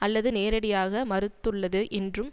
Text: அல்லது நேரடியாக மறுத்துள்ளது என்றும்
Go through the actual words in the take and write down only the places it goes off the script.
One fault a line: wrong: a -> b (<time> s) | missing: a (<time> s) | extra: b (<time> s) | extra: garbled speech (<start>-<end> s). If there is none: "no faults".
no faults